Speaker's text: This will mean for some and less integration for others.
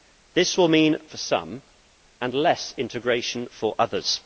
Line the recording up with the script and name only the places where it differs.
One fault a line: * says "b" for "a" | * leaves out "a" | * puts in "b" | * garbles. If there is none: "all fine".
all fine